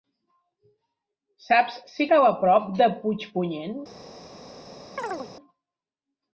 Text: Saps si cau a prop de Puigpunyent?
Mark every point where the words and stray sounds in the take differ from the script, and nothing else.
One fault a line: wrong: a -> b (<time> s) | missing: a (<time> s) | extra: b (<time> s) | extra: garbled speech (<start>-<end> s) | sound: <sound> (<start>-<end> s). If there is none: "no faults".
sound: chirp (5.0-5.3 s)